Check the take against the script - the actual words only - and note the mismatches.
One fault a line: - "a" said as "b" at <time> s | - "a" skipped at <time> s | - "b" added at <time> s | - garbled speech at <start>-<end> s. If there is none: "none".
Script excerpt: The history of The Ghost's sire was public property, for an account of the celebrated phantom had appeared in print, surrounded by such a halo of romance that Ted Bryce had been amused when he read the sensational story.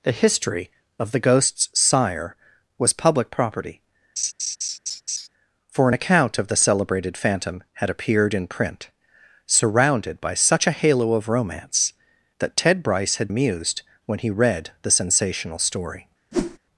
- "been" skipped at 13.3 s